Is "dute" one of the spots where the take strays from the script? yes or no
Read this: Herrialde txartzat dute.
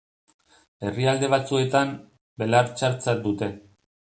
no